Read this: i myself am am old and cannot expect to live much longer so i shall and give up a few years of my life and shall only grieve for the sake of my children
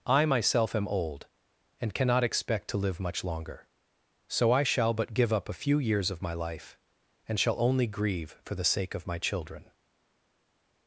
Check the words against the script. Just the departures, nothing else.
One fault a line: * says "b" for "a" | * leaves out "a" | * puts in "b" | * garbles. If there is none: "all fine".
* leaves out "am"
* says "but" for "and"